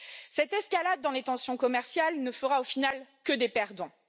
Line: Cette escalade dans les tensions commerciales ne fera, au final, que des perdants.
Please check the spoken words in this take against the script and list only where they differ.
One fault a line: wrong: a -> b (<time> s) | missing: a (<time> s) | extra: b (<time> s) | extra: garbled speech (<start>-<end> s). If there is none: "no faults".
no faults